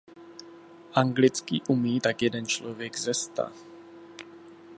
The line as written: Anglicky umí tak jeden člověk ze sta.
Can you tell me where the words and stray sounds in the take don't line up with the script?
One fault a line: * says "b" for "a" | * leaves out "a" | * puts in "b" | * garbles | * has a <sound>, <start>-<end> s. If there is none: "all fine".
all fine